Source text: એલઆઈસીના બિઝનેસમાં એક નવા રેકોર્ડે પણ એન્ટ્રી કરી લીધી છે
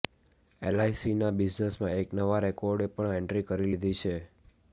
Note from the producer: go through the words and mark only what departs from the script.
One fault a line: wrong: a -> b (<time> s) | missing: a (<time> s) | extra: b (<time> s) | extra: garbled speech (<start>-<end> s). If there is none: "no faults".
no faults